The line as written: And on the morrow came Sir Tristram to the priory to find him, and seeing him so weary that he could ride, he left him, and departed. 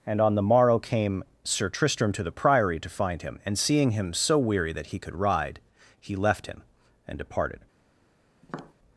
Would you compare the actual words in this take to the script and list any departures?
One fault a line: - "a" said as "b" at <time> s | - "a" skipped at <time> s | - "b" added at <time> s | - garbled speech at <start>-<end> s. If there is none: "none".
none